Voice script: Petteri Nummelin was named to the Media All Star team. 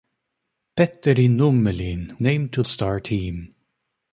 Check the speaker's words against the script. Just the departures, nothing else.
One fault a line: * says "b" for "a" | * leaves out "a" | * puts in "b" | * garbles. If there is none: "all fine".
* leaves out "was"
* leaves out "the Media All"